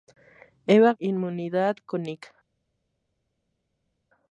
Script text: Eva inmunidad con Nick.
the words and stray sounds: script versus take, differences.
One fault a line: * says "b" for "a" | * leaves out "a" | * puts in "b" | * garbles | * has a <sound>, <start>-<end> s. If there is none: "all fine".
all fine